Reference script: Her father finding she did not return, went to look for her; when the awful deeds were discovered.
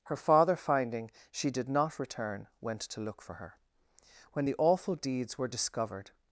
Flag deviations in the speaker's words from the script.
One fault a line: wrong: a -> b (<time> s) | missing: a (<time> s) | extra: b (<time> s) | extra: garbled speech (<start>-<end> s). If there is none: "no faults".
no faults